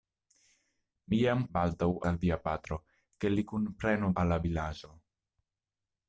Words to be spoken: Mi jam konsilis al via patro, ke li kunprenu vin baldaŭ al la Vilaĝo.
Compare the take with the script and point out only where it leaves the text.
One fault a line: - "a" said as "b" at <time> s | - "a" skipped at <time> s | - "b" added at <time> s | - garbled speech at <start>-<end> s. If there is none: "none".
- "konsilis" said as "baldaŭ" at 1.6 s
- "vin baldaŭ" skipped at 4.1 s